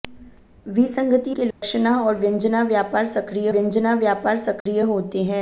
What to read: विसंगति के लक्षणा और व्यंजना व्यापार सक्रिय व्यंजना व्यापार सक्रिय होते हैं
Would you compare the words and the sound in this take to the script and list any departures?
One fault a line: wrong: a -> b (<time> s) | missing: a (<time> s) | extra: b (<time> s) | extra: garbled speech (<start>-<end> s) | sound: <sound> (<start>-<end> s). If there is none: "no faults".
sound: dropout (1.5-1.6 s)
sound: dropout (4.6-4.7 s)